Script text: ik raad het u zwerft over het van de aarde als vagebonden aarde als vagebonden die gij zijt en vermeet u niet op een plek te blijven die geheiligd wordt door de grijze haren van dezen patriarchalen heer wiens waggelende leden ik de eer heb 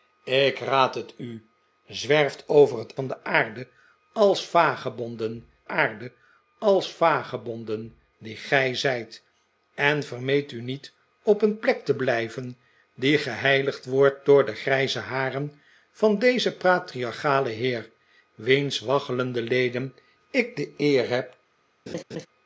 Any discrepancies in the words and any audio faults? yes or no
yes